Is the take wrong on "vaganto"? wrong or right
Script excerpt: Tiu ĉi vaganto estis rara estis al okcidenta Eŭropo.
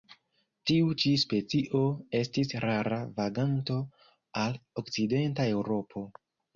wrong